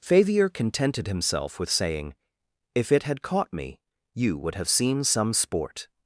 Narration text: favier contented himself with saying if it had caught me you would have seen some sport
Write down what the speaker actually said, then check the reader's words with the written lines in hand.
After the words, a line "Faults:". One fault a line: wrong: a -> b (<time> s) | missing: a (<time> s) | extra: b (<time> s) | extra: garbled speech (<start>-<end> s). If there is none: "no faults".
favier contented himself with saying if it had caught me you would have seen some sport
Faults:
no faults